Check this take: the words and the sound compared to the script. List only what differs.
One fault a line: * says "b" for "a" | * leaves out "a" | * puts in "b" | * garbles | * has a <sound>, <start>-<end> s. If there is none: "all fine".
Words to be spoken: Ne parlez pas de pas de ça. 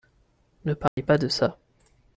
* has a dropout, 0.9-1.0 s
* leaves out "pas de"